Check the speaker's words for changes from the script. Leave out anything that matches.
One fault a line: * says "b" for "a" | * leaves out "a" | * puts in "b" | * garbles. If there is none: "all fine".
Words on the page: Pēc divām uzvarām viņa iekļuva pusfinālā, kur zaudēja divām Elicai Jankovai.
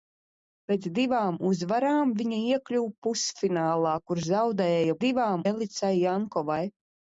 all fine